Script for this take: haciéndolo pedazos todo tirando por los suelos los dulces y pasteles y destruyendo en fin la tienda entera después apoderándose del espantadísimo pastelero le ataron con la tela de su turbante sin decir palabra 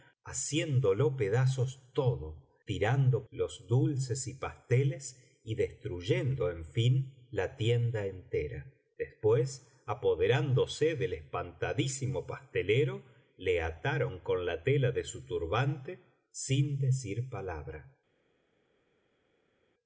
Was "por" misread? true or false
true